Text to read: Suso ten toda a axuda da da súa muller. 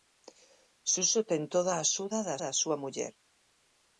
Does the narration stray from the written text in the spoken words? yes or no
no